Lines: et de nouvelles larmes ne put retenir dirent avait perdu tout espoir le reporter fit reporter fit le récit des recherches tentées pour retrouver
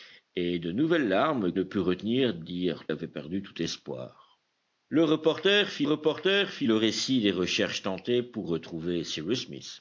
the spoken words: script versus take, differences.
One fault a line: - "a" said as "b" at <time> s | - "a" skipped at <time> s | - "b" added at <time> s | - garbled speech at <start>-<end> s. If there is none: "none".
none